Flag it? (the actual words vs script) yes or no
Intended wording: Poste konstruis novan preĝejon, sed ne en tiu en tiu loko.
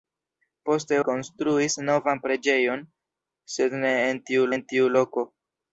no